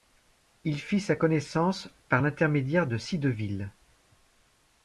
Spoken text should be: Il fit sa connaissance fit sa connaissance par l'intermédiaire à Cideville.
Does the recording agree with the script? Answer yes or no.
no